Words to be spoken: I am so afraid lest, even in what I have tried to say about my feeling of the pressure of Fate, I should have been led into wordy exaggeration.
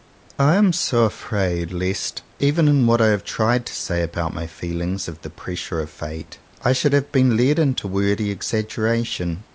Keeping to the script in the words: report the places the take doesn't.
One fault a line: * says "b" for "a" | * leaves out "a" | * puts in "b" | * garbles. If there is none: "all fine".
all fine